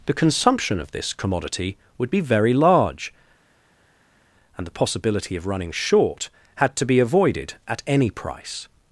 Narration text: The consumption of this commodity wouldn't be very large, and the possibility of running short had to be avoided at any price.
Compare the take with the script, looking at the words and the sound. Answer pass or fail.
fail